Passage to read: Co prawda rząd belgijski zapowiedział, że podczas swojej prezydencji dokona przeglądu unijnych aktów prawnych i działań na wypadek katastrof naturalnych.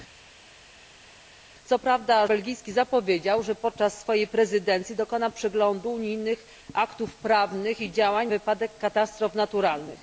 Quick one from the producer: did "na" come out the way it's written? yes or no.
no